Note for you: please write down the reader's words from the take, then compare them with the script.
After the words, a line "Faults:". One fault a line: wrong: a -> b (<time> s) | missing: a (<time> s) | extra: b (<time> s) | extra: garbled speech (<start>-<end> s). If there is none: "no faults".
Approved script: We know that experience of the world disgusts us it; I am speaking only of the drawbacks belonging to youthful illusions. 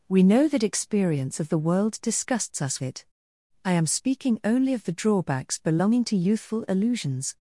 We know that experience of the world disgusts us it; I am speaking only of the drawbacks belonging to youthful illusions.
Faults:
no faults